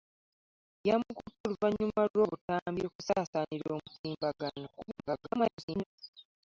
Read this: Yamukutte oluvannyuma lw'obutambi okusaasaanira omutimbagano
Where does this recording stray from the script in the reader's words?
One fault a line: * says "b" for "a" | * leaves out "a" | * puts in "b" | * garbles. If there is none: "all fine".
* garbles